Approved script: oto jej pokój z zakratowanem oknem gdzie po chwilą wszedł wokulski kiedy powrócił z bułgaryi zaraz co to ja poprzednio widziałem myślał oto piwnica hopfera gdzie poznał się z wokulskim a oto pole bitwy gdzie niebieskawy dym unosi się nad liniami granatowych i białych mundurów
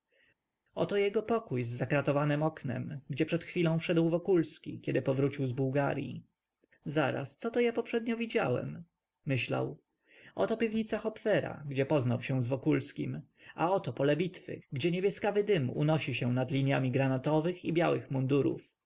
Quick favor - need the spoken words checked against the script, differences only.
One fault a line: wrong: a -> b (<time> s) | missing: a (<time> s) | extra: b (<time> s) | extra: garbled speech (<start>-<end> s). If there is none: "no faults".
wrong: jej -> jego (1.0 s)
wrong: po -> przed (3.2 s)